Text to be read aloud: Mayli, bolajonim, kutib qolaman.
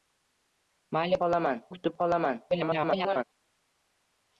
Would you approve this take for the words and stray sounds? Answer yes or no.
no